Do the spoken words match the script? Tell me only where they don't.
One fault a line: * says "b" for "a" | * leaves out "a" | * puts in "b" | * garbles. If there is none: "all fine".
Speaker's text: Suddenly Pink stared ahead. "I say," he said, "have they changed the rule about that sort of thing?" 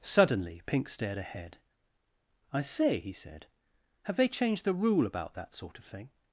all fine